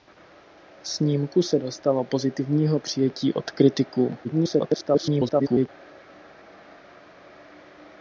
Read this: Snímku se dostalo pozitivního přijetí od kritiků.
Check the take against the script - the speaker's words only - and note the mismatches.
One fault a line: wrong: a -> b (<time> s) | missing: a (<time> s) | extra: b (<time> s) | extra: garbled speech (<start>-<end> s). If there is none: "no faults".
extra: garbled speech (4.2-5.7 s)